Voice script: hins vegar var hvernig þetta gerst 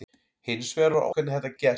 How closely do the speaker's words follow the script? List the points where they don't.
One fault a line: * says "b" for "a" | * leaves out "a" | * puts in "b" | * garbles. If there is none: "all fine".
all fine